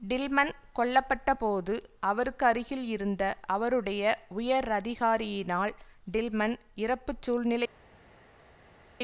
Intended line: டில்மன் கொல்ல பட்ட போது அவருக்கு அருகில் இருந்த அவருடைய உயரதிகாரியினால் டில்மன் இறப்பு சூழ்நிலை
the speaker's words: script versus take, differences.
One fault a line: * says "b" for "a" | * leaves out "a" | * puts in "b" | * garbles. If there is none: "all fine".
all fine